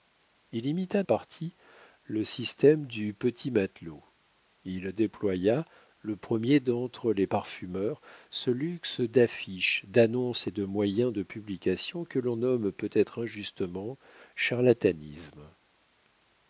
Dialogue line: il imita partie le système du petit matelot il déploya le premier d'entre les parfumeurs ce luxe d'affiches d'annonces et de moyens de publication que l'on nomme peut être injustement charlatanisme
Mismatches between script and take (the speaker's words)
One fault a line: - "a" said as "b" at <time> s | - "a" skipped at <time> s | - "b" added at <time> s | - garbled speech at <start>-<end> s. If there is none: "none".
none